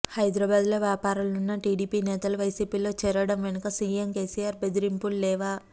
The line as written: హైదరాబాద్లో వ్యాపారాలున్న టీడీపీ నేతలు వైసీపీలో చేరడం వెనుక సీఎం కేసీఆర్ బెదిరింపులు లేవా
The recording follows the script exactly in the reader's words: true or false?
true